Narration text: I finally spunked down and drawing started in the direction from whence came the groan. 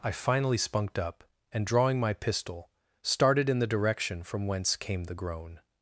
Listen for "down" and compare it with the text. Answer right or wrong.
wrong